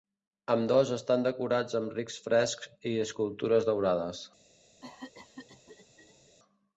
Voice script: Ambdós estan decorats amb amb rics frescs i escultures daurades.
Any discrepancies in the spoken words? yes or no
yes